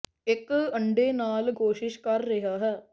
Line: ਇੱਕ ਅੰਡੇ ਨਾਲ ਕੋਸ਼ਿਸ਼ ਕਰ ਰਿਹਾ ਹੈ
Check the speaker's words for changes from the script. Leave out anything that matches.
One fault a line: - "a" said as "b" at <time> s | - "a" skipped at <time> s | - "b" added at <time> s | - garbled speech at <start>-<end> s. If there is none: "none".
none